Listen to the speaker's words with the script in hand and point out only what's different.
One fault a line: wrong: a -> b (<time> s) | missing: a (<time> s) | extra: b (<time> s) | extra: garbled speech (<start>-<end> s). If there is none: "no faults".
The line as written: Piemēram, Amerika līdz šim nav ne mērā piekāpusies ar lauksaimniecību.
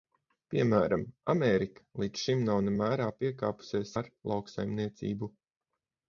no faults